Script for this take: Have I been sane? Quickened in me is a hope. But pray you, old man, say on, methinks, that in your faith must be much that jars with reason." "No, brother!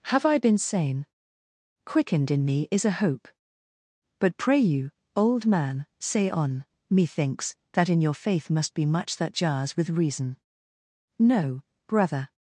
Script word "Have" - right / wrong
right